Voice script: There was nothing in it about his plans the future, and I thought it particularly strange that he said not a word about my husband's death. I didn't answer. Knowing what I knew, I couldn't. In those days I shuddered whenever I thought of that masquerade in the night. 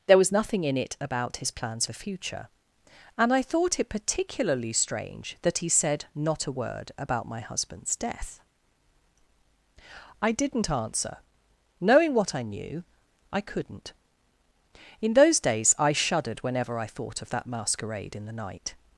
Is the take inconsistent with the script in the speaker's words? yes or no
no